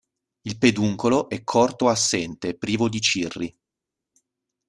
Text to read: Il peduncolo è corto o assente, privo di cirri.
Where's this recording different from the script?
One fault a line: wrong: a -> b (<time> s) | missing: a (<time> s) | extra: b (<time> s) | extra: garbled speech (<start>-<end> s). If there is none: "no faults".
no faults